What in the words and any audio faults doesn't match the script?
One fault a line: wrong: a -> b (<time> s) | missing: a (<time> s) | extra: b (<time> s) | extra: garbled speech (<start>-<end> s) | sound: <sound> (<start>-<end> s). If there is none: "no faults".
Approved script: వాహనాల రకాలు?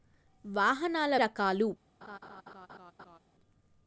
sound: laugh (2.0-3.2 s)